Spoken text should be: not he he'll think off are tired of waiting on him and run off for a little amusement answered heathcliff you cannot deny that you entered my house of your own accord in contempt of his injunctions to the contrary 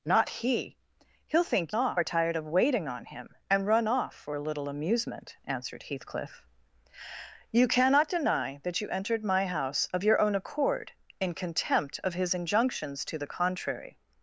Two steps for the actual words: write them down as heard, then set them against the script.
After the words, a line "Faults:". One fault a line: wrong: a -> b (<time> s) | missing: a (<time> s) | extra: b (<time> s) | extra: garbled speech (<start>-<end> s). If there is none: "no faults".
not he he'll think off are tired of waiting on him and run off for a little amusement answered heathcliff you cannot deny that you entered my house of your own accord in contempt of his injunctions to the contrary
Faults:
no faults